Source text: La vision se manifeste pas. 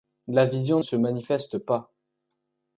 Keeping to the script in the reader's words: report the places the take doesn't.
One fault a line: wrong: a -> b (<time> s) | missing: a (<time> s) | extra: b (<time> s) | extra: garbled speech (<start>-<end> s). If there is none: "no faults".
no faults